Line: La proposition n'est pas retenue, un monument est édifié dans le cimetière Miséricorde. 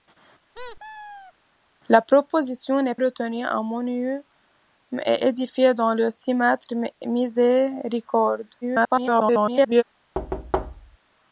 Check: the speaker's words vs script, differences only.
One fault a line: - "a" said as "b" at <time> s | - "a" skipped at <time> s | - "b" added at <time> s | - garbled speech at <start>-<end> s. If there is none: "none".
- "pas" skipped at 3.0 s
- garbled speech at 8.6-9.8 s